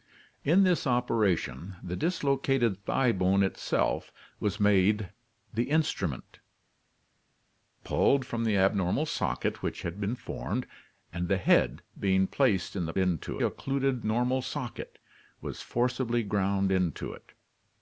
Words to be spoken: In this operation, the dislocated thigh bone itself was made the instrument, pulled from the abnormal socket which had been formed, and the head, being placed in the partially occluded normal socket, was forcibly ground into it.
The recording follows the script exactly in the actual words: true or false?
false